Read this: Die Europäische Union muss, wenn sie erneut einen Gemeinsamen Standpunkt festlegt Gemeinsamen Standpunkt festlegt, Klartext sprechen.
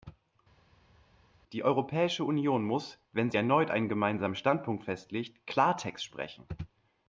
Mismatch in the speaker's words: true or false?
true